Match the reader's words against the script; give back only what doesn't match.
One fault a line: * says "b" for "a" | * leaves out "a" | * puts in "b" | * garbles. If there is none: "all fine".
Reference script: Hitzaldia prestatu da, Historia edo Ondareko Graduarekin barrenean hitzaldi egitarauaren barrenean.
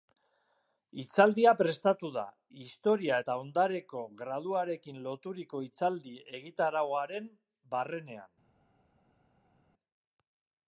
* says "eta" for "edo"
* says "loturiko" for "barrenean"